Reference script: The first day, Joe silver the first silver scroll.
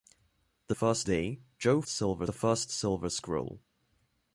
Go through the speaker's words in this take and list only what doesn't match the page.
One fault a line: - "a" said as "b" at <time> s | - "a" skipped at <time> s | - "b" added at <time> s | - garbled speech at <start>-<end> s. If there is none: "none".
none